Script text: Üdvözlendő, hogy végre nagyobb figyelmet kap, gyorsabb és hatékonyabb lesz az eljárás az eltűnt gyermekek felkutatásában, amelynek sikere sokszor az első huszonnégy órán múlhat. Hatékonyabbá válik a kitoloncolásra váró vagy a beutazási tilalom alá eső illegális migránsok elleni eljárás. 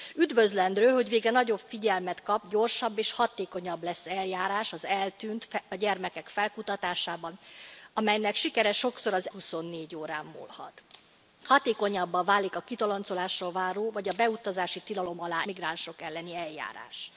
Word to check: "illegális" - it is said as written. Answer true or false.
false